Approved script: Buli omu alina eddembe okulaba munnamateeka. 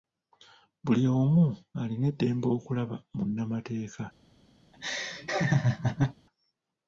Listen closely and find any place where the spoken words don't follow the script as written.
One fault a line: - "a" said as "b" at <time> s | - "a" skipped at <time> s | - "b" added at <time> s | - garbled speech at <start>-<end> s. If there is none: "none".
none